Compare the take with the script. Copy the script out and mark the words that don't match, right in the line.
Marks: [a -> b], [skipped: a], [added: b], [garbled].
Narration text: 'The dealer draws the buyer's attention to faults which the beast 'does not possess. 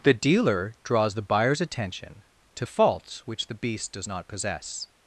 'The dealer draws the buyer's attention to faults which the beast 'does not possess.